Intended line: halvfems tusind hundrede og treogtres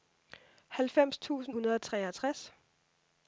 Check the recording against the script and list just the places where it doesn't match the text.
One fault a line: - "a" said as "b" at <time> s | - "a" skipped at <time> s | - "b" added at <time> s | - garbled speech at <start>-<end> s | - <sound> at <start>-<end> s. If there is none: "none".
none